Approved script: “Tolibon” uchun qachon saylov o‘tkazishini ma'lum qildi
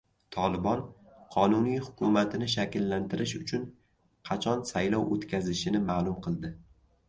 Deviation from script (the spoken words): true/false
true